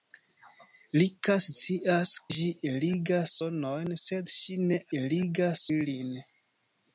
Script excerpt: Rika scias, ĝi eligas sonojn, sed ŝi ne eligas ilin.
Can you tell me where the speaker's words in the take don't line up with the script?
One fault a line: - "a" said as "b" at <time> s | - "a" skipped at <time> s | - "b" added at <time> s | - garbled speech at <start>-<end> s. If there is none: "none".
none